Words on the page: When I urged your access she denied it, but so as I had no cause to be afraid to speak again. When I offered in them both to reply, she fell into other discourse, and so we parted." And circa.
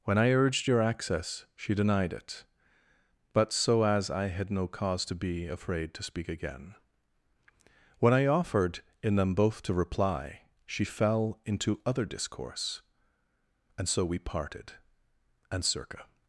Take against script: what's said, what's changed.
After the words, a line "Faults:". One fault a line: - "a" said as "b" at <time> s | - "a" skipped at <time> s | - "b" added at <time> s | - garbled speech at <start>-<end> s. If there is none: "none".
When I urged your access she denied it, but so as I had no cause to be afraid to speak again. When I offered in them both to reply, she fell into other discourse, and so we parted." And circa.
Faults:
none